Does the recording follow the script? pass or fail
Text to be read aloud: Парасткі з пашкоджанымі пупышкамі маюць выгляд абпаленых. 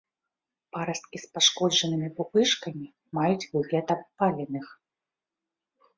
pass